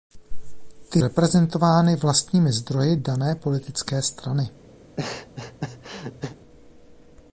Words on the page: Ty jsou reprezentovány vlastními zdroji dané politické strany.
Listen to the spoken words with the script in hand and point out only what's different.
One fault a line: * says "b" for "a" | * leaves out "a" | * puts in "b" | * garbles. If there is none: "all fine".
* leaves out "jsou"